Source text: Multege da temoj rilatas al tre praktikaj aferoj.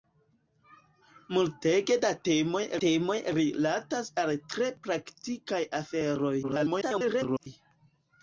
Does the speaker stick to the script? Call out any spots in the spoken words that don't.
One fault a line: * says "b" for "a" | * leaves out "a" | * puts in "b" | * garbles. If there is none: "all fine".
* puts in "temoj"
* garbles